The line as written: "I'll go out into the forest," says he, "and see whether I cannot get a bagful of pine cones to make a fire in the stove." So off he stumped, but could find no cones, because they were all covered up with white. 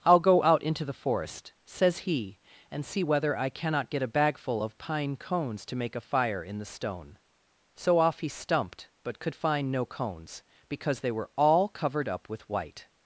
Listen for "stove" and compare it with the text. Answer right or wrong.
wrong